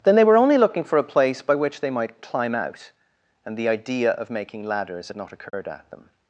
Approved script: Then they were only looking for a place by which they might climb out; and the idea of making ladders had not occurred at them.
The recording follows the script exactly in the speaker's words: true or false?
true